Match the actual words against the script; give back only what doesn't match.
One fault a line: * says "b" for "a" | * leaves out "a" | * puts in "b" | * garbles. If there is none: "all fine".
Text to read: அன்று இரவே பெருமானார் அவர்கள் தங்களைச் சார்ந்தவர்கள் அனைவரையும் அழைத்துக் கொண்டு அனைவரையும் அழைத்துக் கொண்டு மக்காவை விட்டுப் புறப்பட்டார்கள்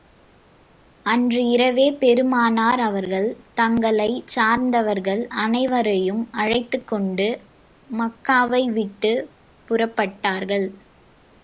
* leaves out "அனைவரையும் அழைத்துக் கொண்டு"